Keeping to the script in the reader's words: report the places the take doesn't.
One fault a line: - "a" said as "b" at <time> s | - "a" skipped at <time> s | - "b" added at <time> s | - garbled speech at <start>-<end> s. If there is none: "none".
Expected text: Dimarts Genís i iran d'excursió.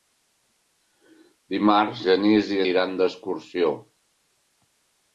none